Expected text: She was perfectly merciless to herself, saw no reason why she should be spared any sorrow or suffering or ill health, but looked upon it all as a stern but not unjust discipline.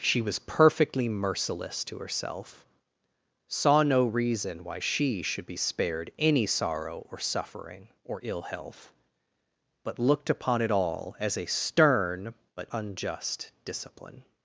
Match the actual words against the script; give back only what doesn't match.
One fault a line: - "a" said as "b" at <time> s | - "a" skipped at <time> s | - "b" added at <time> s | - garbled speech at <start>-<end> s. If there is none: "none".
- "not" skipped at 12.7 s